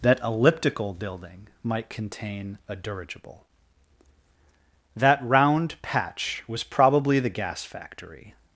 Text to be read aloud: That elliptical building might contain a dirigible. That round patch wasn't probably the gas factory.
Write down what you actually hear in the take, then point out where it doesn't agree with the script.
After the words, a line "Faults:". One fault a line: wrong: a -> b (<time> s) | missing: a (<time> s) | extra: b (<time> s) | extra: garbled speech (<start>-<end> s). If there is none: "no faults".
That elliptical building might contain a dirigible. That round patch was probably the gas factory.
Faults:
wrong: wasn't -> was (6.5 s)